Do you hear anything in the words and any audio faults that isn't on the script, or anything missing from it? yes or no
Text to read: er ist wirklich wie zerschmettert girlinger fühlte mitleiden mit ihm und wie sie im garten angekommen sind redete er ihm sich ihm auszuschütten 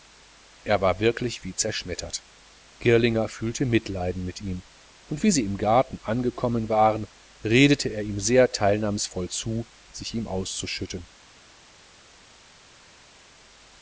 yes